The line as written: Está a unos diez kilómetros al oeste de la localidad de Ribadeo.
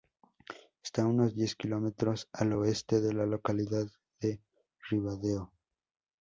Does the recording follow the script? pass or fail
pass